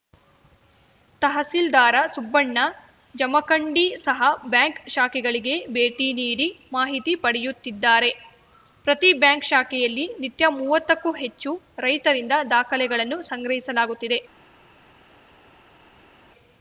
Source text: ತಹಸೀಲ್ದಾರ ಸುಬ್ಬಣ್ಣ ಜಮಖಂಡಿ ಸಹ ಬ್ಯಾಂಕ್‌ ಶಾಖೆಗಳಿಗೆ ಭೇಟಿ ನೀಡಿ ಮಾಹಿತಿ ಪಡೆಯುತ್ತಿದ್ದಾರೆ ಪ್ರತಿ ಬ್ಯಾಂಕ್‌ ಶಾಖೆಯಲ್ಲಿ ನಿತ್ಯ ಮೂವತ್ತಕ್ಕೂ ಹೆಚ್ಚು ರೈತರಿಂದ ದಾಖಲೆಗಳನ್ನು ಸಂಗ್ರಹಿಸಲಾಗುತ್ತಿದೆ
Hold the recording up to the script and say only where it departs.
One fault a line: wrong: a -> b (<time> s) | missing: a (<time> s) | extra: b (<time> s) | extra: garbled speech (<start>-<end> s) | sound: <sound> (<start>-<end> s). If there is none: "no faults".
no faults